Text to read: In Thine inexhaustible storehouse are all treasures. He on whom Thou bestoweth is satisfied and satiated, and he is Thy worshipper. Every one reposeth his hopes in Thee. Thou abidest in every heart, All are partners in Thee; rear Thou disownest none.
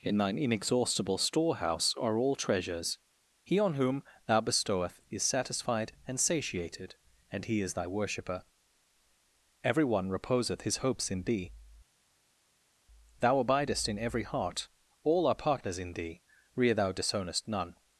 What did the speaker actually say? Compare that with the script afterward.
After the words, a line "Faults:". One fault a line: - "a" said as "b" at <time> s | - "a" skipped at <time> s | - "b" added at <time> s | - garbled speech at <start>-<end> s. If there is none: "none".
In Thine inexhaustible storehouse are all treasures. He on whom Thou bestoweth is satisfied and satiated, and he is Thy worshipper. Every one reposeth his hopes in Thee. Thou abidest in every heart, All are partners in Thee; rear Thou disownest none.
Faults:
none